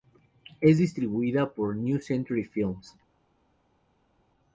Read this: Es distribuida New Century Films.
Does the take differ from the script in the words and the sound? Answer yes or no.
yes